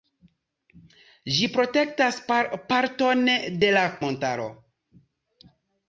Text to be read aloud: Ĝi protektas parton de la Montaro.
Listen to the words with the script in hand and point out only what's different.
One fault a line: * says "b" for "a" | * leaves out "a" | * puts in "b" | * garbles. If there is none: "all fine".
all fine